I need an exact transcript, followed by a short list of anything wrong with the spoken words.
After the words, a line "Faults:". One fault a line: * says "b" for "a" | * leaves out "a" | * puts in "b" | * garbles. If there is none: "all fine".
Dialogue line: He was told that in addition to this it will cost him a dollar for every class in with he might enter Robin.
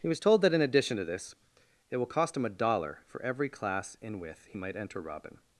He was told that in addition to this it will cost him a dollar for every class in with he might enter Robin.
Faults:
all fine